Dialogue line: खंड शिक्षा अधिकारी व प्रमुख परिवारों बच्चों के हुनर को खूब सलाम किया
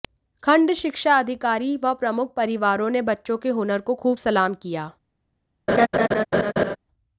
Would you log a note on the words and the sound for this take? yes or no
yes